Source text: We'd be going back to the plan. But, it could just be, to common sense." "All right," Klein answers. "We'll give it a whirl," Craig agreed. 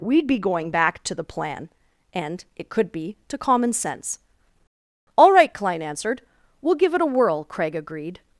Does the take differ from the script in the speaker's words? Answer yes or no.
yes